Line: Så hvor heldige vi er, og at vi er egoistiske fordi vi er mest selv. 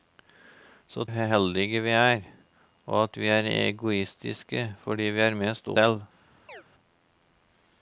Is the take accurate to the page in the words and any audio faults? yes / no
no